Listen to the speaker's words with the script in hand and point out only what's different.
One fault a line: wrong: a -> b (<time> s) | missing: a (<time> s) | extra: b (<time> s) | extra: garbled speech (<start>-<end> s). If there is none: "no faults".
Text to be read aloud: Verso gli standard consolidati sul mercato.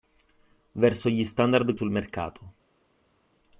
missing: consolidati (1.8 s)